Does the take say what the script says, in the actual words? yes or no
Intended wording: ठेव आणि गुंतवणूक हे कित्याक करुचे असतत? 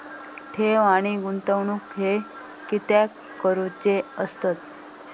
yes